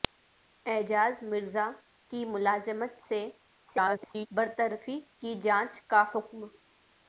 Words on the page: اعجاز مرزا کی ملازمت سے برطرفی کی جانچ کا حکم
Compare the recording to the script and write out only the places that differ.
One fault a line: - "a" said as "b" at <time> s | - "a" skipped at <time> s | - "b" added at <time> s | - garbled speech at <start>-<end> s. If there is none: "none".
- garbled speech at 3.7-4.3 s